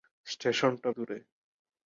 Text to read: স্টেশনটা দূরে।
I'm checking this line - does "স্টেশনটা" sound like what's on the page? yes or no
yes